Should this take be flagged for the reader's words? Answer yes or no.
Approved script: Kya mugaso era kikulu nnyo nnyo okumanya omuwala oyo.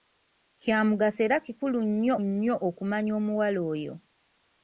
no